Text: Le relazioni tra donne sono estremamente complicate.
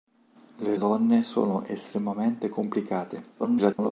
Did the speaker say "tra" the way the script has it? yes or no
no